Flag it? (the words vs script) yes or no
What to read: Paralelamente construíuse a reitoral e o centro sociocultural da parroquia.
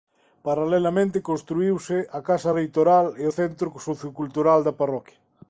yes